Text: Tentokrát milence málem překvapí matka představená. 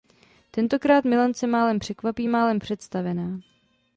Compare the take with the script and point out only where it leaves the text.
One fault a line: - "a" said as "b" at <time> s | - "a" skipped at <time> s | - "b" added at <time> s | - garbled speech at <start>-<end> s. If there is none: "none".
- "matka" said as "málem" at 2.3 s